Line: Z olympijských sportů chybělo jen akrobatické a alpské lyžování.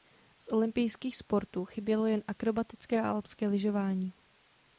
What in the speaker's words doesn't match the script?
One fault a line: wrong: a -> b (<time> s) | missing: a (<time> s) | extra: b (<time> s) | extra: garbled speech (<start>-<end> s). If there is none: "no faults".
no faults